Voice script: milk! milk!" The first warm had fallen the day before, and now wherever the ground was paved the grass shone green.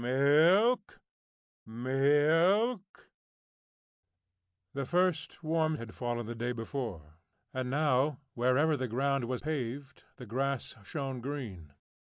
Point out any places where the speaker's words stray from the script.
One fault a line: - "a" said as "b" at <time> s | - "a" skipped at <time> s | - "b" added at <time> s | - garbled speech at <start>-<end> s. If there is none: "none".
none